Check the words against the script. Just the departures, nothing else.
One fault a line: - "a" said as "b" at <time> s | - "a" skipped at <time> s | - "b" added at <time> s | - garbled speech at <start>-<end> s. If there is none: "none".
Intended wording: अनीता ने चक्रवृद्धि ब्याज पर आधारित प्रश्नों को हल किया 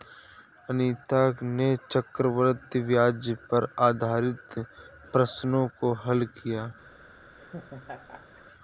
none